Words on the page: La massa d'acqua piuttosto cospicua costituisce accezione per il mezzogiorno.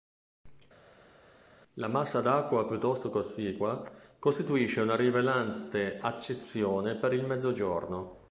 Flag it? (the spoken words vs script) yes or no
yes